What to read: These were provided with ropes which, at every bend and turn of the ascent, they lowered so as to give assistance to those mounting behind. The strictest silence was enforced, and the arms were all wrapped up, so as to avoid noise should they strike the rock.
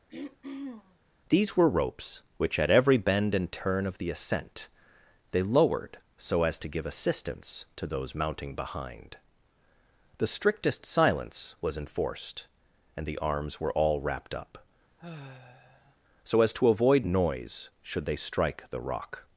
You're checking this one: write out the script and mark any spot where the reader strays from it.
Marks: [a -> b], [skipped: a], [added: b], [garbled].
These were [skipped: provided with] ropes which, at every bend and turn of the ascent, they lowered so as to give assistance to those mounting behind. The strictest silence was enforced, and the arms were all wrapped up, so as to avoid noise should they strike the rock.